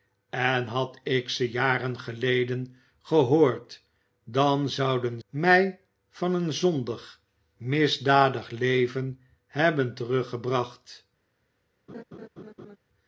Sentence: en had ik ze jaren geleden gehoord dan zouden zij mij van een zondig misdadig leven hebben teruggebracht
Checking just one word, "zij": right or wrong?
wrong